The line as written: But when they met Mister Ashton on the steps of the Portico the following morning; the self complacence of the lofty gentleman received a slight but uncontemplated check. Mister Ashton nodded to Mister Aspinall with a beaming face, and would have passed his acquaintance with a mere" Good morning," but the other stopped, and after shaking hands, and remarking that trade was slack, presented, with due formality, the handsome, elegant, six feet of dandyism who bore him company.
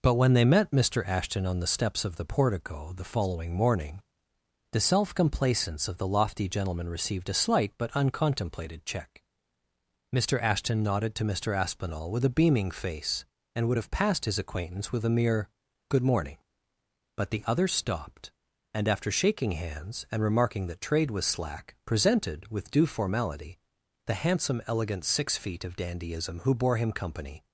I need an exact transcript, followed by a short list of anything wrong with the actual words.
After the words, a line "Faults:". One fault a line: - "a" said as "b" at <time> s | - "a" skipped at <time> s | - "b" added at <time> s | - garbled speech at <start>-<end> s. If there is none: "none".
But when they met Mister Ashton on the steps of the Portico the following morning; the self complacence of the lofty gentleman received a slight but uncontemplated check. Mister Ashton nodded to Mister Aspinall with a beaming face, and would have passed his acquaintance with a mere" Good morning," but the other stopped, and after shaking hands, and remarking that trade was slack, presented, with due formality, the handsome, elegant, six feet of dandyism who bore him company.
Faults:
none